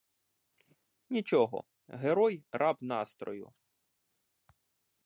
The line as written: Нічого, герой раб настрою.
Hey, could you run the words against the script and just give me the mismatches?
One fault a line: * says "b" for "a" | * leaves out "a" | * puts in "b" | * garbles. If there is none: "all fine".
all fine